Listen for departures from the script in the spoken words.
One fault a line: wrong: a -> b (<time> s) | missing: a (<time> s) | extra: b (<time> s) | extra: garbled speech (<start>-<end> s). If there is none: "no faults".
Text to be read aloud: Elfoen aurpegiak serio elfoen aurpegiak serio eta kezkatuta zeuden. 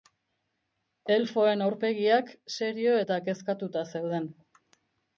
missing: elfoen aurpegiak serio (3.0 s)